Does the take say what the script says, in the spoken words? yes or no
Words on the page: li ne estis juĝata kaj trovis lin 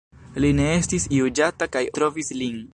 yes